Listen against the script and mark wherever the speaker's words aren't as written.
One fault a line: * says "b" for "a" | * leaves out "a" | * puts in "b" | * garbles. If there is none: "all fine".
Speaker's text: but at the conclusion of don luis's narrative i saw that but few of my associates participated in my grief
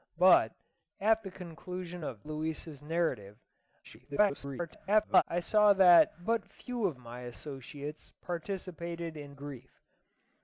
* leaves out "don"
* garbles
* leaves out "my"